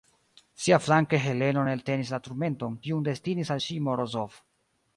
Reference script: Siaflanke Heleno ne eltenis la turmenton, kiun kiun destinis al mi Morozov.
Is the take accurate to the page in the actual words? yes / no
no